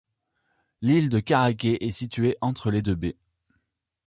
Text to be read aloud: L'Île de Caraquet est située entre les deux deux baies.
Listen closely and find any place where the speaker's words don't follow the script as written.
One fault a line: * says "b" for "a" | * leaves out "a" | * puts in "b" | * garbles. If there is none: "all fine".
* leaves out "deux"